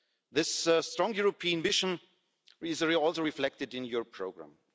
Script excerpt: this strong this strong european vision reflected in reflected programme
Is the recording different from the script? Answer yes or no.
yes